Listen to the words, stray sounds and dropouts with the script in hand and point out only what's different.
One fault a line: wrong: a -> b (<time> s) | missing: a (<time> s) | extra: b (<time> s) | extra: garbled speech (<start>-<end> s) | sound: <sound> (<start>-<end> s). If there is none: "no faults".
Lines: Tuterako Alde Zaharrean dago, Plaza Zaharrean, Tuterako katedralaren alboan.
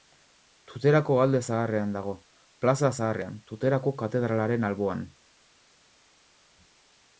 no faults